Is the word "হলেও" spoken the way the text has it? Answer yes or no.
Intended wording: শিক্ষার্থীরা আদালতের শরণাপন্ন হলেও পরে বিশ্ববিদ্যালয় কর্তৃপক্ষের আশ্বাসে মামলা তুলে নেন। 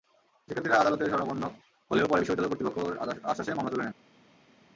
yes